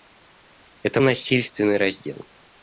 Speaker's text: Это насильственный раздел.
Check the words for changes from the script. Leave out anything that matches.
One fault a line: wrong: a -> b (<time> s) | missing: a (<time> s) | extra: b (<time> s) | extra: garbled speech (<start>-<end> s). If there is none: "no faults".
no faults